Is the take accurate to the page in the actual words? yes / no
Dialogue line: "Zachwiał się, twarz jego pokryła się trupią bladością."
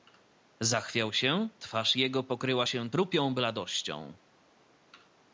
yes